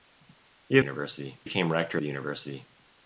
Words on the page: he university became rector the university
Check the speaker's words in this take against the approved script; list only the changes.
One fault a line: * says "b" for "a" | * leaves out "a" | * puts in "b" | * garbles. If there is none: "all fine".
all fine